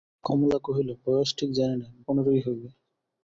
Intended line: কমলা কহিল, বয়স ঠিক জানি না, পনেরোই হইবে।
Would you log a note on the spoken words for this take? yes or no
no